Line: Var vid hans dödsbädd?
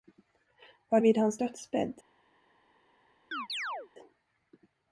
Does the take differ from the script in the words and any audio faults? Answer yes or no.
yes